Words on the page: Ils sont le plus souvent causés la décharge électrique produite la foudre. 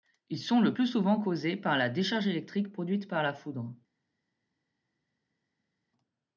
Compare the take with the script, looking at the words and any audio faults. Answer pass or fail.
fail